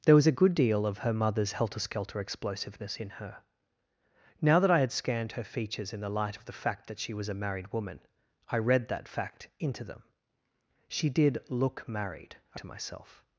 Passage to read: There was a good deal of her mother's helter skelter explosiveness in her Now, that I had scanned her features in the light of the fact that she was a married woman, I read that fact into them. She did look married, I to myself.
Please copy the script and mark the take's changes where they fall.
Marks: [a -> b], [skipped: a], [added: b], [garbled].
There was a good deal of her mother's helter skelter explosiveness in her Now, that I had scanned her features in the light of the fact that she was a married woman, I read that fact into them. She did look married, I to myself.